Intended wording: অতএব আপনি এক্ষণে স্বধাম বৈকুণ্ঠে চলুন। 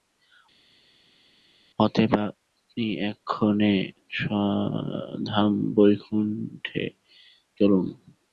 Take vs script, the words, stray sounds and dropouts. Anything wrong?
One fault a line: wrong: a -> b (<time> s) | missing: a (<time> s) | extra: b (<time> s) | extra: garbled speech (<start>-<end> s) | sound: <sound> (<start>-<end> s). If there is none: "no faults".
no faults